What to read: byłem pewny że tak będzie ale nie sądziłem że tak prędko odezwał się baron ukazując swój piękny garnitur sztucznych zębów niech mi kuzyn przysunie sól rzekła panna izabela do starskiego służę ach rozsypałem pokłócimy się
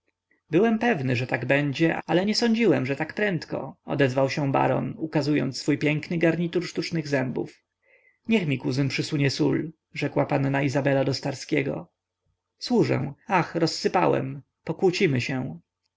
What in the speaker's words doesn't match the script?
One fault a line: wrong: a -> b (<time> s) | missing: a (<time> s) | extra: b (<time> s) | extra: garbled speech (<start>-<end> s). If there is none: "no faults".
no faults